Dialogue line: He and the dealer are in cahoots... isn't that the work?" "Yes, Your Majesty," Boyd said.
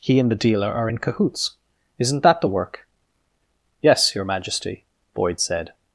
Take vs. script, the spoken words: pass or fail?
pass